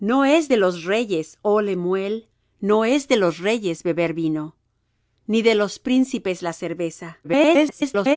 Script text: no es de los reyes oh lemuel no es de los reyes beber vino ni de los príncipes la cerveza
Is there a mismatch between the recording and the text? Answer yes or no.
yes